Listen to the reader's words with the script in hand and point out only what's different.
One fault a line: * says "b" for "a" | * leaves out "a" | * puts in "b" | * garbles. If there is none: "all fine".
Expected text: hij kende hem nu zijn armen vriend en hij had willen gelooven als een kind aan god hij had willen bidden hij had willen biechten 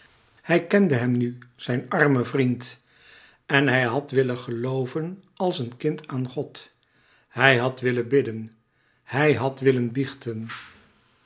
all fine